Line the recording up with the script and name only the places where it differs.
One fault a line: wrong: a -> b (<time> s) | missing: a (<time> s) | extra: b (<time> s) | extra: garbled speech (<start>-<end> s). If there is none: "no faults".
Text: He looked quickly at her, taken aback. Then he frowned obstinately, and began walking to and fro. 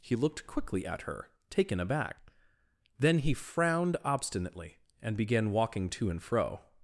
no faults